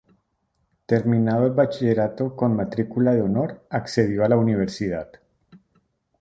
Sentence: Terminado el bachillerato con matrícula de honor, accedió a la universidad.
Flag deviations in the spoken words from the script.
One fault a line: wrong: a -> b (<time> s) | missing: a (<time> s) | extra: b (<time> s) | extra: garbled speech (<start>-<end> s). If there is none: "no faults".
no faults